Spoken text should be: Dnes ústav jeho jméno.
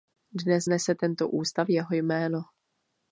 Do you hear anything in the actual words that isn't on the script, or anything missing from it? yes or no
yes